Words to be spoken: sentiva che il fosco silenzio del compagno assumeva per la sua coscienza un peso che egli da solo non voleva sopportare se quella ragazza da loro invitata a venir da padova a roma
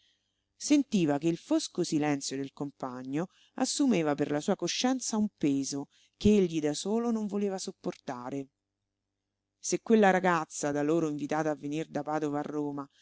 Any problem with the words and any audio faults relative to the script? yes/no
no